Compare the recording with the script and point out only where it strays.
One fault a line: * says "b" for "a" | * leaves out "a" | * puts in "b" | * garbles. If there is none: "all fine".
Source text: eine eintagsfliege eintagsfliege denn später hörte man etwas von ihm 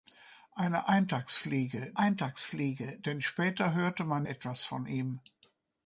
all fine